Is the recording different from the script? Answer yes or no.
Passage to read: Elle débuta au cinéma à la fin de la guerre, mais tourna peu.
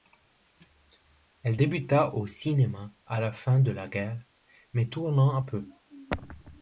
no